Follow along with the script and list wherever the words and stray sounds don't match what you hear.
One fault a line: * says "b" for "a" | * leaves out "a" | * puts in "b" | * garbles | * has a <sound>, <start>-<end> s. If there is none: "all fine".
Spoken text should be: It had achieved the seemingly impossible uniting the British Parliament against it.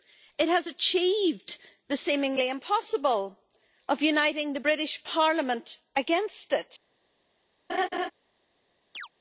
* says "has" for "had"
* puts in "of"
* has a laugh, 7.7-8.1 s
* has a chirp, 8.9-9.1 s